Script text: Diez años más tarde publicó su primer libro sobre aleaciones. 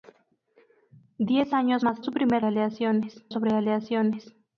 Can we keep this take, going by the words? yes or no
no